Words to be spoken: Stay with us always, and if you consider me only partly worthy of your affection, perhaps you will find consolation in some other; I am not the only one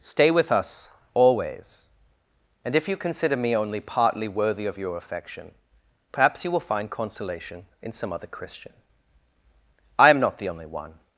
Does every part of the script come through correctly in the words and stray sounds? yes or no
no